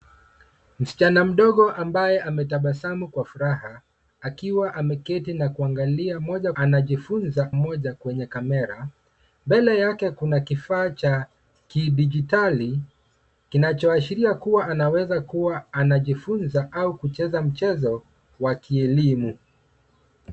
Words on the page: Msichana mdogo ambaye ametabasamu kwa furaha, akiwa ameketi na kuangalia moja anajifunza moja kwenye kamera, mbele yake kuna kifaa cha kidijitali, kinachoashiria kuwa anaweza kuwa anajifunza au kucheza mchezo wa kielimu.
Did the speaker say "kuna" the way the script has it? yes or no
yes